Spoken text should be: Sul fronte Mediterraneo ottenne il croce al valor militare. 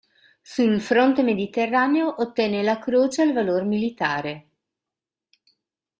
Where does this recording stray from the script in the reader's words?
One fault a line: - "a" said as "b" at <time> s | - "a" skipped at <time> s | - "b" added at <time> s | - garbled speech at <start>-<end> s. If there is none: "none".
- "il" said as "la" at 2.6 s